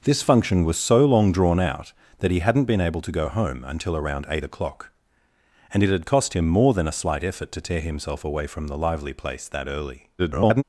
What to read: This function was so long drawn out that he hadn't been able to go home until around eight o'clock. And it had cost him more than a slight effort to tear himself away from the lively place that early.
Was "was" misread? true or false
false